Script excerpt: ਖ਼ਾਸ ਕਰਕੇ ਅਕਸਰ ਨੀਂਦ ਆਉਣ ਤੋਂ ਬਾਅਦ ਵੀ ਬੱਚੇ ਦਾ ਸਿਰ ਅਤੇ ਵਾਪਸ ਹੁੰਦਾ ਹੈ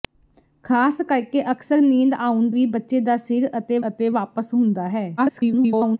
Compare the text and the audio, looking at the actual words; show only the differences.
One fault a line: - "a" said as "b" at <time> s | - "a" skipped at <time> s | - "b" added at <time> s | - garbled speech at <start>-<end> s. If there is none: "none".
- "ਤੋਂ ਬਾਅਦ" skipped at 2.5 s
- "ਅਤੇ" added at 3.9 s
- garbled speech at 5.2-6.0 s